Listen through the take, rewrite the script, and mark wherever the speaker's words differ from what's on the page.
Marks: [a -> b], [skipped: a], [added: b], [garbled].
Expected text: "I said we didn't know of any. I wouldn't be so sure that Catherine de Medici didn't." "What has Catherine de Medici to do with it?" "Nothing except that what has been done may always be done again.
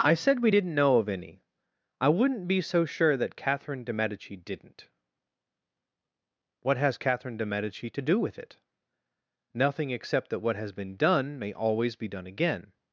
"I said we didn't know of any. I wouldn't be so sure that Catherine de Medici didn't." "What has Catherine de Medici to do with it?" "Nothing except that what has been done may always be done again.